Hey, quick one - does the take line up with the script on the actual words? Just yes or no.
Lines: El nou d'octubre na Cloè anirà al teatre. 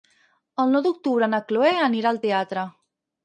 yes